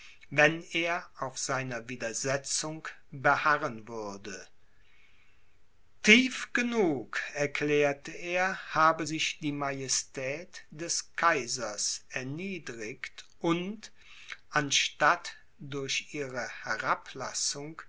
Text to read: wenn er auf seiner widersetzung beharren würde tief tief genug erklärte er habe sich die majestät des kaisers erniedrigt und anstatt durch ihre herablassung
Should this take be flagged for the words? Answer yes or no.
yes